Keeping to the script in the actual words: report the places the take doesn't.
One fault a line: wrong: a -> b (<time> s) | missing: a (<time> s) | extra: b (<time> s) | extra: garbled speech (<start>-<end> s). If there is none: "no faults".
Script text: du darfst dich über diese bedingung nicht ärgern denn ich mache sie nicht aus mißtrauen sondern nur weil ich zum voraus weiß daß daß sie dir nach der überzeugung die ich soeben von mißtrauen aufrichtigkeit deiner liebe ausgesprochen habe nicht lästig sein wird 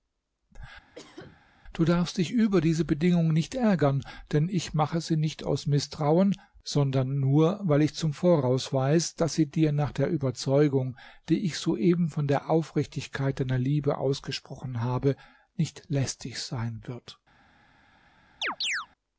missing: daß (9.3 s)
wrong: mißtrauen -> der (12.3 s)